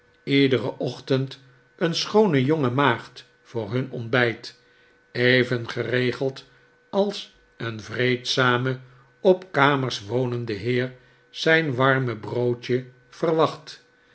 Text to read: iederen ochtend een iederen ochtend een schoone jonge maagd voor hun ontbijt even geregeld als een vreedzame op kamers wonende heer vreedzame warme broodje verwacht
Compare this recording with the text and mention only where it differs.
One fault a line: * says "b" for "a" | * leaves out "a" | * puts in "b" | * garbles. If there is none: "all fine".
* leaves out "iederen ochtend een"
* says "zijn" for "vreedzame"